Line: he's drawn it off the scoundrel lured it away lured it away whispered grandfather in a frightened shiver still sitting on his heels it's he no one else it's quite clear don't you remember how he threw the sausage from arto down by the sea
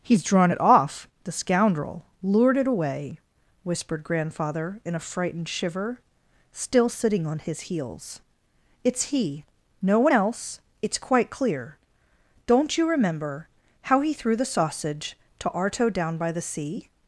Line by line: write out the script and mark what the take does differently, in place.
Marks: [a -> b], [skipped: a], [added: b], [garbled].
he's drawn it off the scoundrel lured it away [skipped: lured it away] whispered grandfather in a frightened shiver still sitting on his heels it's he no one else it's quite clear don't you remember how he threw the sausage [from -> to] arto down by the sea